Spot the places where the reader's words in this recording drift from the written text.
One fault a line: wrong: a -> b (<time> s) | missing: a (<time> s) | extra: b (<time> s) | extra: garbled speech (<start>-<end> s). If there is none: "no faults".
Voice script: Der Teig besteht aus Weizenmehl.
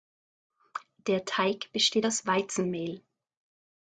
no faults